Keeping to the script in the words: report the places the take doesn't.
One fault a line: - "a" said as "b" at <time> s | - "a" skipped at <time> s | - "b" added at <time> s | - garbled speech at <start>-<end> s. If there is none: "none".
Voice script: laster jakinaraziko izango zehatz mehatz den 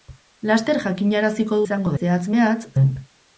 none